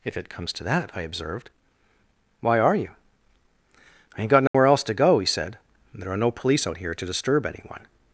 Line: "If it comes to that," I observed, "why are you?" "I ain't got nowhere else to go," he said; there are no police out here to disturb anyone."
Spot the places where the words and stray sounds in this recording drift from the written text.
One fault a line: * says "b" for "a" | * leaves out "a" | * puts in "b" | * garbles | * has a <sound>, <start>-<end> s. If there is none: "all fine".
* has a dropout, 4.5-4.5 s